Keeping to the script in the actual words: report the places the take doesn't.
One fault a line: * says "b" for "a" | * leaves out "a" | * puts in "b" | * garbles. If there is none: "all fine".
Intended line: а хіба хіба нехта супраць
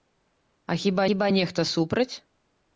all fine